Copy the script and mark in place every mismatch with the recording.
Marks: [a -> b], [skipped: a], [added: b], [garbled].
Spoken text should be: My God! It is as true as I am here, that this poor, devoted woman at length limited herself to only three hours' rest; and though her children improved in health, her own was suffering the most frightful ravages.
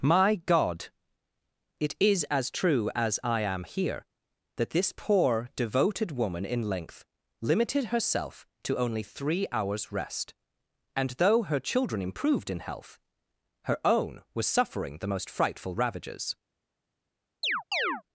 My God! It is as true as I am here, that this poor, devoted woman [at -> in] length limited herself to only three hours' rest; and though her children improved in health, her own was suffering the most frightful ravages.